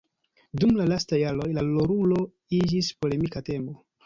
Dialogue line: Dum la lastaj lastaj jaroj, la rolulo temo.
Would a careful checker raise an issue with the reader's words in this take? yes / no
yes